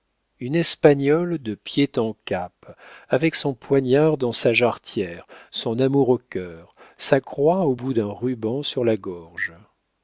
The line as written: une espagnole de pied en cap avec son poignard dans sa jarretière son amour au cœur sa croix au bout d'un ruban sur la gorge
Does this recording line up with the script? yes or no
yes